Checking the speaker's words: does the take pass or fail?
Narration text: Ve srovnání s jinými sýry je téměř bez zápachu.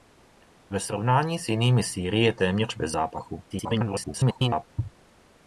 fail